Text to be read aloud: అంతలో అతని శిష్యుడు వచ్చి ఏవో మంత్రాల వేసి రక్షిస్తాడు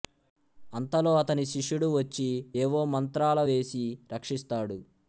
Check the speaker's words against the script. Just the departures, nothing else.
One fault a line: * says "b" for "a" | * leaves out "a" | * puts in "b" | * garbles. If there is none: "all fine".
all fine